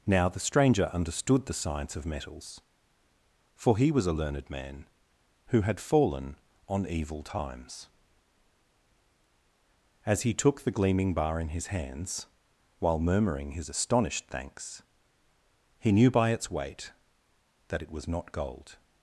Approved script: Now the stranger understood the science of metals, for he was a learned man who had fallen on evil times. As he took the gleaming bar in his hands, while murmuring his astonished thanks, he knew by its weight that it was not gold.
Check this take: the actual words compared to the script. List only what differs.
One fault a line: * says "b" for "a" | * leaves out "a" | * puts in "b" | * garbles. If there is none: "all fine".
all fine